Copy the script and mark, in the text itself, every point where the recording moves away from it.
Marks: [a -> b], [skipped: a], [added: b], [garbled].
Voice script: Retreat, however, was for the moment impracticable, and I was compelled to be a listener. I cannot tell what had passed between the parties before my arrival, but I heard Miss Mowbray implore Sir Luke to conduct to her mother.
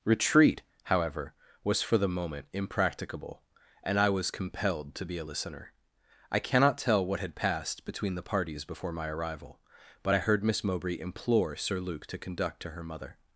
Retreat, however, was for the moment impracticable, and I was compelled to be a listener. I cannot tell what had passed between the parties before my arrival, but I heard Miss Mowbray implore Sir Luke to conduct to her mother.